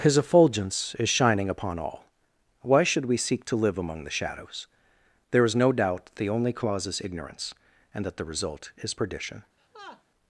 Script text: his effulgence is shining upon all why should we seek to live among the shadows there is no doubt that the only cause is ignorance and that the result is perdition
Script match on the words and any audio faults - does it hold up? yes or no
no